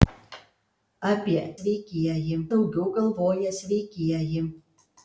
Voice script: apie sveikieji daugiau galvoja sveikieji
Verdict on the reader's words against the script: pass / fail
pass